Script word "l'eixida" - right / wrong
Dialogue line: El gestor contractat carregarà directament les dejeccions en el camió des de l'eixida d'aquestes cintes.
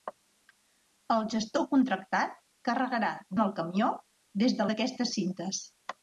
wrong